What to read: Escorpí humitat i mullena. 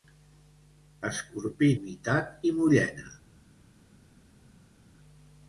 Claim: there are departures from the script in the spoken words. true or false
false